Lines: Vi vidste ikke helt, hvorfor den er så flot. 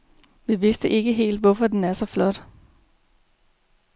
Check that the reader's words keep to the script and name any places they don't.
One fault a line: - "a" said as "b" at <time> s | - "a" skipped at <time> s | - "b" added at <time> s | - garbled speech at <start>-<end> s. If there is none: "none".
none